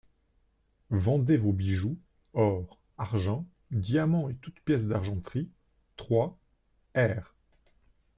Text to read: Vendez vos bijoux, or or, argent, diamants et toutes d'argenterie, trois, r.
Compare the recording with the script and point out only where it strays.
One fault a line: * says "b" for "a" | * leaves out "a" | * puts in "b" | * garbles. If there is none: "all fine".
* leaves out "or"
* puts in "pièces"